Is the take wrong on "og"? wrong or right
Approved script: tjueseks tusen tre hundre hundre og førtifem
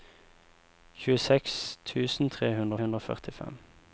right